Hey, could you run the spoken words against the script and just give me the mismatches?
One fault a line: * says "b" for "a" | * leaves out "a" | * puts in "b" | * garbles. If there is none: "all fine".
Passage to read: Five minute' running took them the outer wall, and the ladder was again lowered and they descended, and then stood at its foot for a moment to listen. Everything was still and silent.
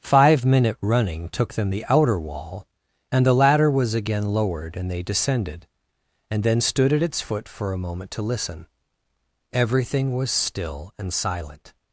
all fine